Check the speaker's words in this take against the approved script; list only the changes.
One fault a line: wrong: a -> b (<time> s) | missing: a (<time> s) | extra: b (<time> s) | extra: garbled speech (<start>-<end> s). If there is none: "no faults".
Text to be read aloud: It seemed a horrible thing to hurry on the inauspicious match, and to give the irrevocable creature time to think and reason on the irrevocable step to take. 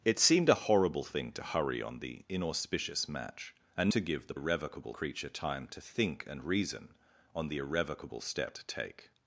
no faults